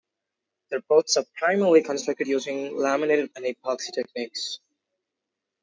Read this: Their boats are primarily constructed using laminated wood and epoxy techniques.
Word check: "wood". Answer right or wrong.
wrong